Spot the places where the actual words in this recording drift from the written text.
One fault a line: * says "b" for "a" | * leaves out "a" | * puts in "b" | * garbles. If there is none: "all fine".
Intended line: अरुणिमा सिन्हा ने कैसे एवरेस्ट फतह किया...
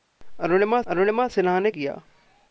* puts in "अरुणिमा"
* leaves out "कैसे एवरेस्ट फतह"